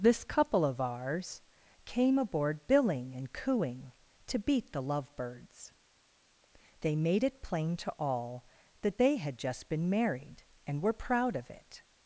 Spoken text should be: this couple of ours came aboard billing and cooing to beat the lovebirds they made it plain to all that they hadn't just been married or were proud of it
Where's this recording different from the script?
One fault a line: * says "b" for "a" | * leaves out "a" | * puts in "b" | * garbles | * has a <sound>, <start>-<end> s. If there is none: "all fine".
* says "had" for "hadn't"
* says "and" for "or"